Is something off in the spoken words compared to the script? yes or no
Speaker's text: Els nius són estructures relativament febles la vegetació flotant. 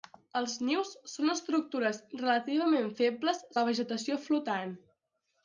no